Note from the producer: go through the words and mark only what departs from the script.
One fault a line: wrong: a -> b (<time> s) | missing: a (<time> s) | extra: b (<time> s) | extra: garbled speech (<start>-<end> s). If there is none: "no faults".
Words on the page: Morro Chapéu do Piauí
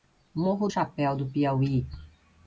no faults